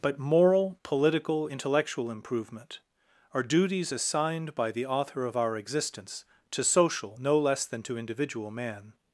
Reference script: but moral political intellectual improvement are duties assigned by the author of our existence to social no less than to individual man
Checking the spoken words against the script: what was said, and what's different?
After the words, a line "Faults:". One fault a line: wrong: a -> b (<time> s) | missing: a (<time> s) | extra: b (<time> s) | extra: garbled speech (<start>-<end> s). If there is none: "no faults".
but moral political intellectual improvement are duties assigned by the author of our existence to social no less than to individual man
Faults:
no faults